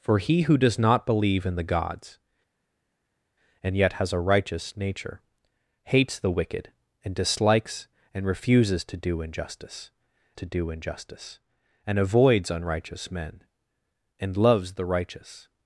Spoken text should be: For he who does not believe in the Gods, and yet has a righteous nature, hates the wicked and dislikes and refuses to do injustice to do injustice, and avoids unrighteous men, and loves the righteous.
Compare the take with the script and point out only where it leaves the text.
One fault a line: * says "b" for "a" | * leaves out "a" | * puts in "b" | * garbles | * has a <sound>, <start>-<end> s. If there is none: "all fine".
all fine